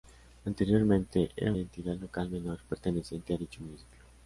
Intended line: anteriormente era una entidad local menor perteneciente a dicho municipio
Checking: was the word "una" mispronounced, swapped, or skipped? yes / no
yes